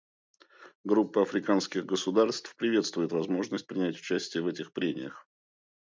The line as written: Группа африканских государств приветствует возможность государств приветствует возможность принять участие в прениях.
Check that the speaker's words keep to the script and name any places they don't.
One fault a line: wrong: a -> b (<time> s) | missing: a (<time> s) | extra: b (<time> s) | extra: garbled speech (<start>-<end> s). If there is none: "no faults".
missing: государств приветствует возможность (3.7 s)
extra: этих (4.5 s)